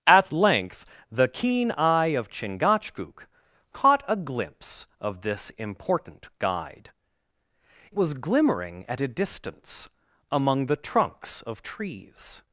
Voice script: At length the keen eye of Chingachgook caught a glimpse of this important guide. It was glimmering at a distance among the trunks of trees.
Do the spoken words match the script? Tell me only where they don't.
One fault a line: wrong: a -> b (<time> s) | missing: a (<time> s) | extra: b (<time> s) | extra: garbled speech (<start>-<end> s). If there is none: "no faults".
missing: It (6.9 s)